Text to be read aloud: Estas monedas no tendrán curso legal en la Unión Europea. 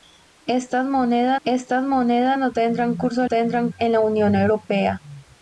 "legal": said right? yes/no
no